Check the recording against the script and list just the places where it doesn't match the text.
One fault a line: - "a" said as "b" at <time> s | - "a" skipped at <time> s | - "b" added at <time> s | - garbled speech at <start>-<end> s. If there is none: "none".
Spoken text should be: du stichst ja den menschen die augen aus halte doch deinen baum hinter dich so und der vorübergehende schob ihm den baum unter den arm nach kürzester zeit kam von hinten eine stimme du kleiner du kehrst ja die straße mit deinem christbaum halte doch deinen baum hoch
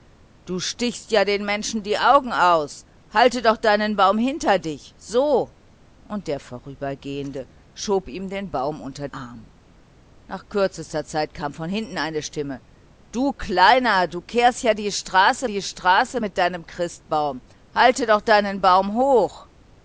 - "den" skipped at 9.1 s
- "die straße" added at 15.4 s